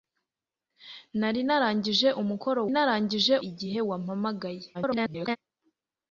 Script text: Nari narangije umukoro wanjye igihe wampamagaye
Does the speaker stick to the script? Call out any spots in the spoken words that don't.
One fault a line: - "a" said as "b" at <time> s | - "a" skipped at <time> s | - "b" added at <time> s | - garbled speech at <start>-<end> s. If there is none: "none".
- "wanjye" said as "narangije" at 2.7 s
- garbled speech at 4.7-5.4 s